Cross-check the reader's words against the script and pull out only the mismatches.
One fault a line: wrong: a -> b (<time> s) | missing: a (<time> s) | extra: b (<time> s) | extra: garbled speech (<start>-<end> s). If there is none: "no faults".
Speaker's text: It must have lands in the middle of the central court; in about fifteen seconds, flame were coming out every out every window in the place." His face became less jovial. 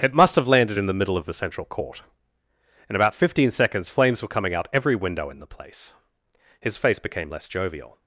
wrong: lands -> landed (0.5 s)
wrong: flame -> flames (3.9 s)
missing: out every (5.0 s)